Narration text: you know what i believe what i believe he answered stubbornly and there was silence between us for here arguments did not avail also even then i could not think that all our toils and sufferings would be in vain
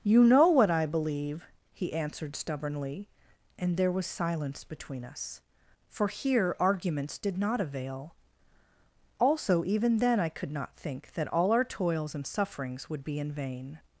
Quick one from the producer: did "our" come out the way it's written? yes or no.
yes